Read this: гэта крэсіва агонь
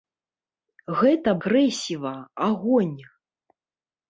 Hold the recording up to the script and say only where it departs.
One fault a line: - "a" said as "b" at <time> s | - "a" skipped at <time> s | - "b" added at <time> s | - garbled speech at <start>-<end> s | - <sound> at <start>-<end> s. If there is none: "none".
none